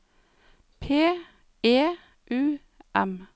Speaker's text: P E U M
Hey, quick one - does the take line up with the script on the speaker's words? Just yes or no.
yes